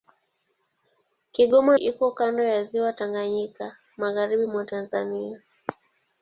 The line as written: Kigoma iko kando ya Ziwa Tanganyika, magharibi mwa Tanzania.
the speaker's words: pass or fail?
pass